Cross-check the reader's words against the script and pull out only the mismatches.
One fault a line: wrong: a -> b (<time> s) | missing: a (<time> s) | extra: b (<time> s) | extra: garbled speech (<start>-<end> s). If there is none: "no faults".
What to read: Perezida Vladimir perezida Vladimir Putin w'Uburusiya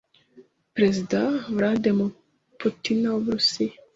missing: perezida Vladimir (2.1 s)